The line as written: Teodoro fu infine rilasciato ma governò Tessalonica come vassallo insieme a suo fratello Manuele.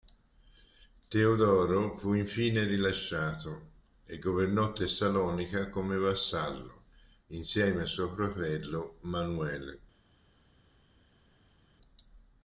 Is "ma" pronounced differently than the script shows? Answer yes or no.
yes